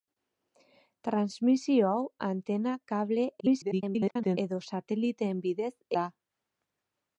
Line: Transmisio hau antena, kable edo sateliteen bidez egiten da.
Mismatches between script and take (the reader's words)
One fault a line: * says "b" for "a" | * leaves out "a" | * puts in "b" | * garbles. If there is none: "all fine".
* garbles
* leaves out "egiten"